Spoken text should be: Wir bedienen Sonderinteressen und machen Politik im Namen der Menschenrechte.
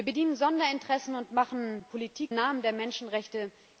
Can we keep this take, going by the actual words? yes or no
no